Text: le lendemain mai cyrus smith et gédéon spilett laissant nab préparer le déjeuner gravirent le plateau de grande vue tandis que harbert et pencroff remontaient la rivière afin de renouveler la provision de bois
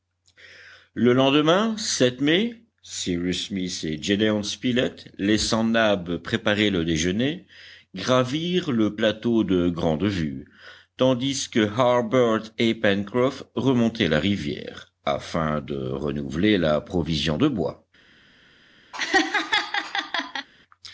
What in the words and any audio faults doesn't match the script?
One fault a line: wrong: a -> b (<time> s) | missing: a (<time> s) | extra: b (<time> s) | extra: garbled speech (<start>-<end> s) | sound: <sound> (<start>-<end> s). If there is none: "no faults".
sound: laugh (18.9-20.5 s)